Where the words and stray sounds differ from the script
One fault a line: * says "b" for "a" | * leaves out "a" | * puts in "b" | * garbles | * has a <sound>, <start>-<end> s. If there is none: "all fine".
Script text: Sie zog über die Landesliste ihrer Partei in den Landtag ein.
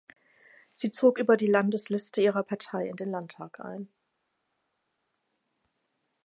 all fine